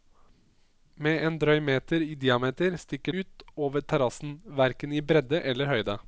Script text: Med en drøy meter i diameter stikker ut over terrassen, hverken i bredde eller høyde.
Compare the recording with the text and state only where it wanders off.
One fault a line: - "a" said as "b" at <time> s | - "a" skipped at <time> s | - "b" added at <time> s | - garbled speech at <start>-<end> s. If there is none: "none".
none